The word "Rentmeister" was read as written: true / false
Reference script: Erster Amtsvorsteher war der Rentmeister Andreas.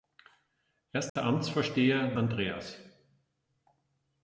false